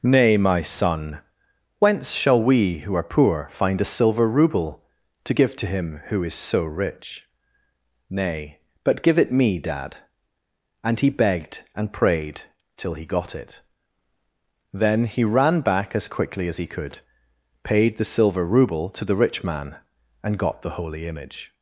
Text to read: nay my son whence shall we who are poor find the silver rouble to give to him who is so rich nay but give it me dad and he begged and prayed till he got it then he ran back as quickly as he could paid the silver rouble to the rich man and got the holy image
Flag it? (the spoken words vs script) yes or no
yes